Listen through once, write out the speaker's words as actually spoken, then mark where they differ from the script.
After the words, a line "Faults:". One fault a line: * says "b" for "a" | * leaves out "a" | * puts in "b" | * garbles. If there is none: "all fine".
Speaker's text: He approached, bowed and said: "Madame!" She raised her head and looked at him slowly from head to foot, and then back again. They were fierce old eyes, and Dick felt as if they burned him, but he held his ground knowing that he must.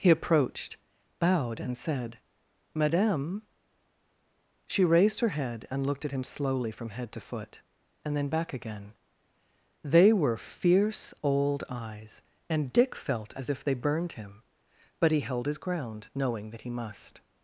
He approached, bowed and said: "Madame!" She raised her head and looked at him slowly from head to foot, and then back again. They were fierce old eyes, and Dick felt as if they burned him, but he held his ground knowing that he must.
Faults:
all fine